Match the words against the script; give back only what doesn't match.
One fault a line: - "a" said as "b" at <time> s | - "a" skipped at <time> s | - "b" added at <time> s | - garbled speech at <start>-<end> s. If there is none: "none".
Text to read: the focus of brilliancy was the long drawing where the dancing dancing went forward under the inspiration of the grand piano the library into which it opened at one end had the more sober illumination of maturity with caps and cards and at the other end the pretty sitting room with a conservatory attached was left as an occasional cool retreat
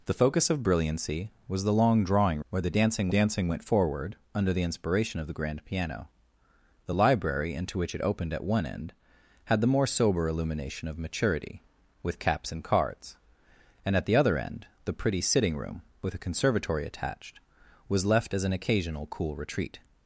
none